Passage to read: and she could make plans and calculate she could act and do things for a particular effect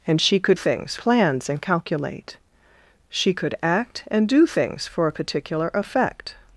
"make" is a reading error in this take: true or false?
true